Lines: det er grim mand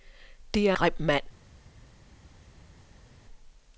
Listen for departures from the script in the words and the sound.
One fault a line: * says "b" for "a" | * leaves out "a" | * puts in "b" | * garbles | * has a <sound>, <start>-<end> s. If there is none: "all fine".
all fine